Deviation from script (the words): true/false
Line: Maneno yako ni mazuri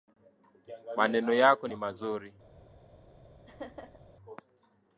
false